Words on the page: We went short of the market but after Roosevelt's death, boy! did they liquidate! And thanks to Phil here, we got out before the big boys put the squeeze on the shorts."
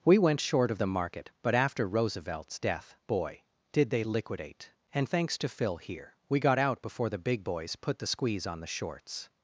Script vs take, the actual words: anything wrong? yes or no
no